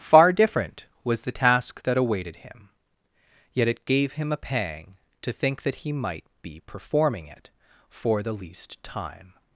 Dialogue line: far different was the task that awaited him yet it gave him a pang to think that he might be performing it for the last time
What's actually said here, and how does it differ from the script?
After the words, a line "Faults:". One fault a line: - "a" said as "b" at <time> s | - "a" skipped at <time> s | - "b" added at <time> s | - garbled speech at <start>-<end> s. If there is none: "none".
far different was the task that awaited him yet it gave him a pang to think that he might be performing it for the least time
Faults:
- "last" said as "least" at 8.3 s